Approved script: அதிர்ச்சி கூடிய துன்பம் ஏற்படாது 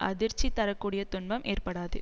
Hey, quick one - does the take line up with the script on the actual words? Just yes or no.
no